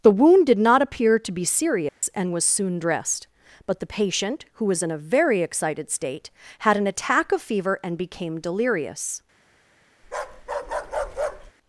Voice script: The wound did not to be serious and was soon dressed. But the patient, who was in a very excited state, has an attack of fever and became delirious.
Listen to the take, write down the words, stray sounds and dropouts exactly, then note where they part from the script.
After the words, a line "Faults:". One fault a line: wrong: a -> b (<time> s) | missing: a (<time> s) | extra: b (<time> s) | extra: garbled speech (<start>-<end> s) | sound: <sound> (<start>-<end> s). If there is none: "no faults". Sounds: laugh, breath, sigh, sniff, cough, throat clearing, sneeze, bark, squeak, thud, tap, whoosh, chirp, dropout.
The wound did not appear to be serious and was soon dressed. But the patient, who was in a very excited state, had an attack of fever and became delirious.
Faults:
extra: appear (0.8 s)
sound: dropout (1.9-2.0 s)
wrong: has -> had (6.6 s)
sound: bark (10.0-11.5 s)